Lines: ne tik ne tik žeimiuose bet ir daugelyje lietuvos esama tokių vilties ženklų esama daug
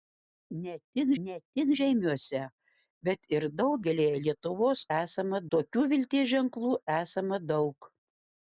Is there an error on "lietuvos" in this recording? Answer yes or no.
no